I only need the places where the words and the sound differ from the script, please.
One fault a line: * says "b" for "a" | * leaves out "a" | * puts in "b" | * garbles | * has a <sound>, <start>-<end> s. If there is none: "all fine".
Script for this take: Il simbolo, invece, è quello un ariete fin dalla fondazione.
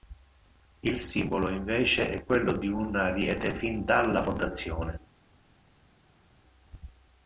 * puts in "di"